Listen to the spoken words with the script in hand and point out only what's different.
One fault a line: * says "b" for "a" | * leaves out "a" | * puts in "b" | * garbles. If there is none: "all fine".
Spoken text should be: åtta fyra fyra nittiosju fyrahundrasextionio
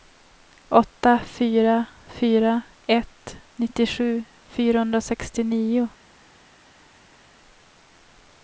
* puts in "ett"